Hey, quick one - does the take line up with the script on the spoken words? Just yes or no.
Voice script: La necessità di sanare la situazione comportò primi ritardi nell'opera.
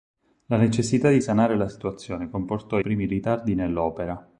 yes